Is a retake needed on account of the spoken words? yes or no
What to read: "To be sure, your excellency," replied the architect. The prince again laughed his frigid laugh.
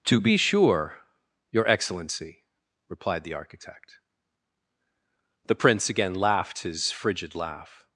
no